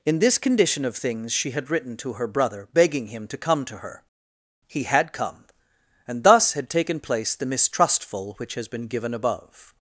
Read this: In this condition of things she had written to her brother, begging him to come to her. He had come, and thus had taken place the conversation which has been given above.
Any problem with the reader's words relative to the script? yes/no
yes